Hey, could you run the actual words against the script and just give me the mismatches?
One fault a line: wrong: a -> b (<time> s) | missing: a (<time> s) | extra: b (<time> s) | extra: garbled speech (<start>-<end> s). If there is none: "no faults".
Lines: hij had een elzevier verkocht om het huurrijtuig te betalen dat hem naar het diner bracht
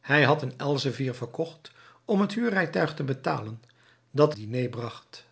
missing: hem naar het (4.3 s)